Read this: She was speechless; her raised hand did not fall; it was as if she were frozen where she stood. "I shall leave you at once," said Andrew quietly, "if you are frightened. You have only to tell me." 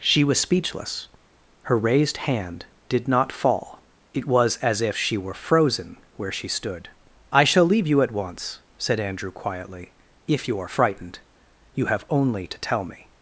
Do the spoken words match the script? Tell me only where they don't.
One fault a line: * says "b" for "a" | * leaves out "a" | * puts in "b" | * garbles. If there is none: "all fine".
all fine